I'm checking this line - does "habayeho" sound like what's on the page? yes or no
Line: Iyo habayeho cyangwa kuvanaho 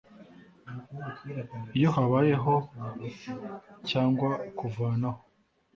yes